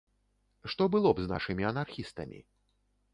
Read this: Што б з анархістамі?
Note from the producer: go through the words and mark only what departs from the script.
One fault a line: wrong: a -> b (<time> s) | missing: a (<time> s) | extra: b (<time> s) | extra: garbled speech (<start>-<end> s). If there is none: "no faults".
extra: было (0.9 s)
extra: нашымі (1.3 s)